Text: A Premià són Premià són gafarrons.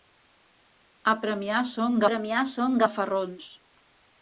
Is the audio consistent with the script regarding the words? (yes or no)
yes